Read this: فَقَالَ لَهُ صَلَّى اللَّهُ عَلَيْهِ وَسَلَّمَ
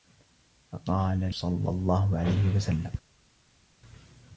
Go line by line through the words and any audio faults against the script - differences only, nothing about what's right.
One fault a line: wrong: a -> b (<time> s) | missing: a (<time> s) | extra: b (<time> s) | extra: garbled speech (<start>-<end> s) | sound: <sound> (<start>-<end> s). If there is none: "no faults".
missing: لَهُ (1.3 s)